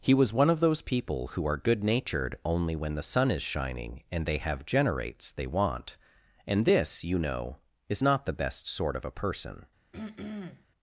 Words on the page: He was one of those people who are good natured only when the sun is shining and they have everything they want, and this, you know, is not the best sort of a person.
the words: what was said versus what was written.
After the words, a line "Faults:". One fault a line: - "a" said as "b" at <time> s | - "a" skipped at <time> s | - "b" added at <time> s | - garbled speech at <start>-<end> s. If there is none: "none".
He was one of those people who are good natured only when the sun is shining and they have generates they want, and this, you know, is not the best sort of a person.
Faults:
- "everything" said as "generates" at 4.7 s